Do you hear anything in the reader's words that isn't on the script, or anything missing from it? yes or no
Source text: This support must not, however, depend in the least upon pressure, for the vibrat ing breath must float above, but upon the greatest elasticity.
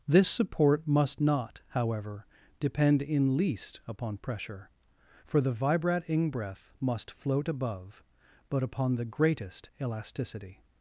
yes